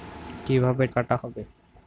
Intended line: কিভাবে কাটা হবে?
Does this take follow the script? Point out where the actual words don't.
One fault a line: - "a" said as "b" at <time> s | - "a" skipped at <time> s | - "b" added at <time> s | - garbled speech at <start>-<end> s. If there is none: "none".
none